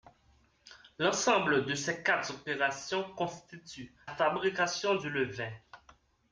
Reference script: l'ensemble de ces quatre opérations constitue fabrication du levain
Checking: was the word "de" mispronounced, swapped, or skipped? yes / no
no